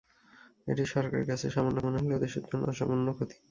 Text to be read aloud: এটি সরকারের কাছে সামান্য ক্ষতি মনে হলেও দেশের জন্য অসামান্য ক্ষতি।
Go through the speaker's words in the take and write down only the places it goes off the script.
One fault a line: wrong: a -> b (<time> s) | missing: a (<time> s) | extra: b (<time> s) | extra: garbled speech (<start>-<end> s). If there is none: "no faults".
missing: ক্ষতি (1.8 s)